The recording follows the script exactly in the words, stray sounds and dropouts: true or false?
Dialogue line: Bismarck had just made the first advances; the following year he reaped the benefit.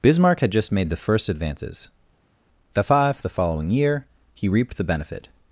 false